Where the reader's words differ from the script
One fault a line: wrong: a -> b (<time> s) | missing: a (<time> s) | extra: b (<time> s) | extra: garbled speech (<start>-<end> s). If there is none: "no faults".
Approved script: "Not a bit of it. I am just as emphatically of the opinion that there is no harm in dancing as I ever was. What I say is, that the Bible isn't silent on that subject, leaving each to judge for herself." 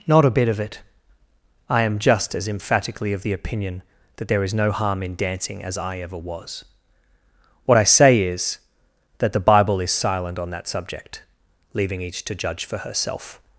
wrong: isn't -> is (9.8 s)